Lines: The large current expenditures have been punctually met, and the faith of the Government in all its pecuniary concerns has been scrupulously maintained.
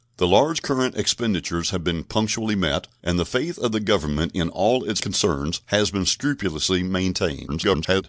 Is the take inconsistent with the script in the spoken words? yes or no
yes